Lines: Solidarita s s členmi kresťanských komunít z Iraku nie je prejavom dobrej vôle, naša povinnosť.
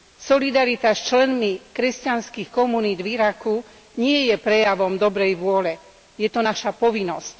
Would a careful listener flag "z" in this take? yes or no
yes